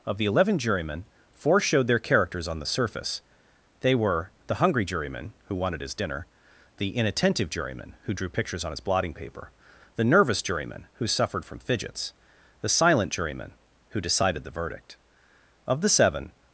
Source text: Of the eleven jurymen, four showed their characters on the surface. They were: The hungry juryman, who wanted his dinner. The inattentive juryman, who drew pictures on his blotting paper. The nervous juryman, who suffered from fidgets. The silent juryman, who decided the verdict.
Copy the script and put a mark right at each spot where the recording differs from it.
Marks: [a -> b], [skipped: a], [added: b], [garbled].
Of the eleven jurymen, four showed their characters on the surface. They were: The hungry juryman, who wanted his dinner. The inattentive juryman, who drew pictures on his blotting paper. The nervous juryman, who suffered from fidgets. The silent juryman, who decided the verdict. [added: Of the seven]